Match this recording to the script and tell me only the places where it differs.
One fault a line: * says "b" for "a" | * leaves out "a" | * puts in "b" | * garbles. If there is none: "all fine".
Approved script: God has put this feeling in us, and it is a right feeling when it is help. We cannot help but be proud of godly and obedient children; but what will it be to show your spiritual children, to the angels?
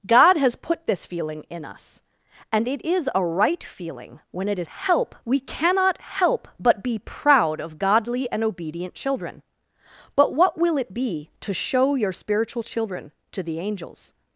all fine